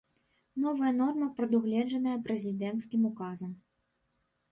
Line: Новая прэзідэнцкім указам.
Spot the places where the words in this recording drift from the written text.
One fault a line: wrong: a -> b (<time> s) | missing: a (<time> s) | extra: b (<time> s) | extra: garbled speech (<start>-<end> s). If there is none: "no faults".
extra: норма прадугледжаная (1.0 s)